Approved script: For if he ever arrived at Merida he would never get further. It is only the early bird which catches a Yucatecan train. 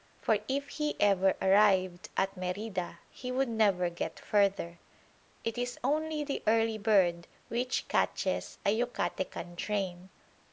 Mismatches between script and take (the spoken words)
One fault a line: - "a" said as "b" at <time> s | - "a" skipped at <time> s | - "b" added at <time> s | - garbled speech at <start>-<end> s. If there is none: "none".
none